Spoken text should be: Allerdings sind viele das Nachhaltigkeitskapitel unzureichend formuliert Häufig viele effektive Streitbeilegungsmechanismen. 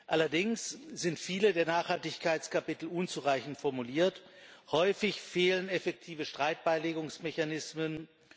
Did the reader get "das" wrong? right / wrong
wrong